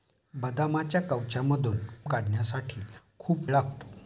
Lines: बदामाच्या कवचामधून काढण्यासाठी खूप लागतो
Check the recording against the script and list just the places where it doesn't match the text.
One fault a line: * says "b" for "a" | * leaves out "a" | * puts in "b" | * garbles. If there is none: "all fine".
all fine